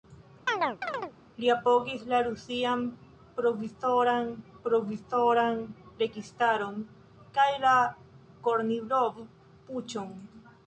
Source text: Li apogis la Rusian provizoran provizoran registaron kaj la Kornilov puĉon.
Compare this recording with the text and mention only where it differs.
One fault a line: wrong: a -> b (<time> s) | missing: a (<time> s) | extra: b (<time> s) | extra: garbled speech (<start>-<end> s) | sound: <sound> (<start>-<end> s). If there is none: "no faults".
sound: chirp (0.5-1.1 s)